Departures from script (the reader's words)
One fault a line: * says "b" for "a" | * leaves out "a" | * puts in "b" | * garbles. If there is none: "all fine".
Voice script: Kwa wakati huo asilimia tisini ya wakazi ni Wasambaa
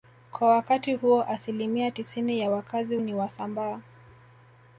all fine